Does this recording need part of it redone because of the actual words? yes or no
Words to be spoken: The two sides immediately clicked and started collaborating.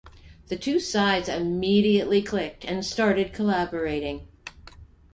no